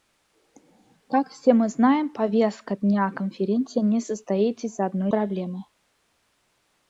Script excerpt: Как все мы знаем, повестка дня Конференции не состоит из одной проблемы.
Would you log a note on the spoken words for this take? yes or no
no